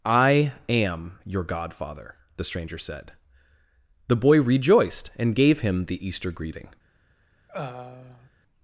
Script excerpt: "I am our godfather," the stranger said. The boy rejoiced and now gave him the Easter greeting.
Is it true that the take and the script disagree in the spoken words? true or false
true